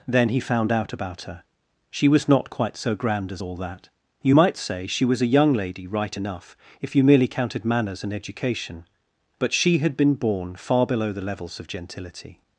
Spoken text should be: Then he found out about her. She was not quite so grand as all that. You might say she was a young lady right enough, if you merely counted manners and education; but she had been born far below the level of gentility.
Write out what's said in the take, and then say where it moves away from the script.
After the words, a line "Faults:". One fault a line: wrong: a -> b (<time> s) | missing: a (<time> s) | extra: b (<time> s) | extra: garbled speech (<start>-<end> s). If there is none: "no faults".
Then he found out about her. She was not quite so grand as all that. You might say she was a young lady right enough, if you merely counted manners and education; but she had been born far below the levels of gentility.
Faults:
wrong: level -> levels (11.2 s)